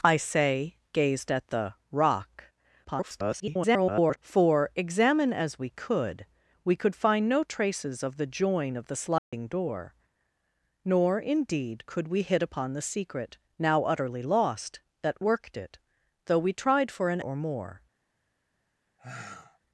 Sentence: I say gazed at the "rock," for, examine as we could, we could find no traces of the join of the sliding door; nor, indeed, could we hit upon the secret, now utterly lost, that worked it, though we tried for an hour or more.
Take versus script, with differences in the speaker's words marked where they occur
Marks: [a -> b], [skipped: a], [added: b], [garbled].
I say gazed at the "rock," [garbled] for, examine as we could, we could find no traces of the join of the sliding door; nor, indeed, could we hit upon the secret, now utterly lost, that worked it, though we tried for an [skipped: hour] or more.